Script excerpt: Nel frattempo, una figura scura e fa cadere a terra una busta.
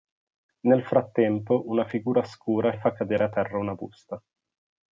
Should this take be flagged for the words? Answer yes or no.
no